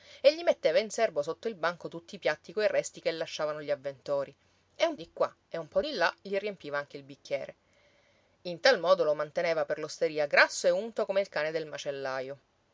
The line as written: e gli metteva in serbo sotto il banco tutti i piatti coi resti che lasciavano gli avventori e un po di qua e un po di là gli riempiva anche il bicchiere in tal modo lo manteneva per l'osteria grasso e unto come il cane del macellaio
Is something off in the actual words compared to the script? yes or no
yes